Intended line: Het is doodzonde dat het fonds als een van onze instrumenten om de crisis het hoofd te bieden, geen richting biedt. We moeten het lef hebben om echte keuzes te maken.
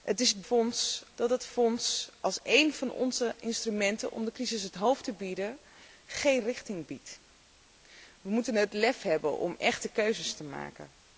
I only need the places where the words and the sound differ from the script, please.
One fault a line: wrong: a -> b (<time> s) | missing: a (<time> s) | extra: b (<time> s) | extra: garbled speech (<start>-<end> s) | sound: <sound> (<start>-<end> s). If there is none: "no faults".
wrong: doodzonde -> fonds (0.4 s)